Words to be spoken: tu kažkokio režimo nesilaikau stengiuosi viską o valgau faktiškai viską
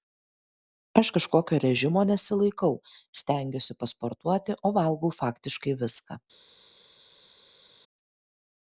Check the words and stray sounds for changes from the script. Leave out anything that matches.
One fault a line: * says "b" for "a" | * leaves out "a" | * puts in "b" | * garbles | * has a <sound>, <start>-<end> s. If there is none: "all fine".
* says "aš" for "tu"
* says "pasportuoti" for "viską"